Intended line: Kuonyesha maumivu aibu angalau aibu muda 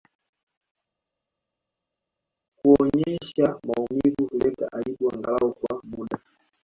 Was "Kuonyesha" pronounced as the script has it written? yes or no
yes